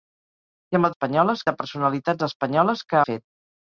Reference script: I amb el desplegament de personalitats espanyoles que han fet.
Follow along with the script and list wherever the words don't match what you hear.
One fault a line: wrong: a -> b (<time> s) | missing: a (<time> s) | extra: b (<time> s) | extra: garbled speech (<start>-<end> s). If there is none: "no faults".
wrong: desplegament -> espanyoles (0.9 s)
missing: han (3.0 s)